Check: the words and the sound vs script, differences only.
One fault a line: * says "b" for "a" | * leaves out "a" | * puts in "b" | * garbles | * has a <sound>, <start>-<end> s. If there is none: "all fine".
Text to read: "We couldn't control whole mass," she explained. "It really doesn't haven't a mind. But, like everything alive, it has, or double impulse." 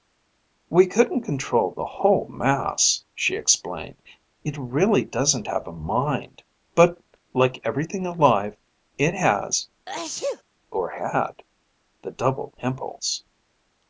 * puts in "the"
* says "have" for "haven't"
* has a sneeze, 9.9-10.4 s
* puts in "had the"